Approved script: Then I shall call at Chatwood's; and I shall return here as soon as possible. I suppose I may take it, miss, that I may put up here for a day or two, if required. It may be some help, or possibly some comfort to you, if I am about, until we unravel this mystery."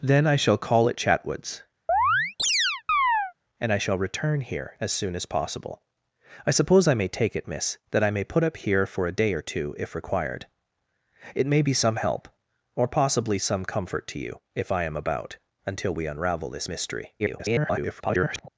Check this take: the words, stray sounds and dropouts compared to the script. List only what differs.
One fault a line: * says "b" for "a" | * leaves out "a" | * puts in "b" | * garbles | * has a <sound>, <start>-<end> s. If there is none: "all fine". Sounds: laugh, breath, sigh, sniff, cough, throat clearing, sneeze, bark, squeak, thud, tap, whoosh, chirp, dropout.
* has a chirp, 1.9-3.3 s
* garbles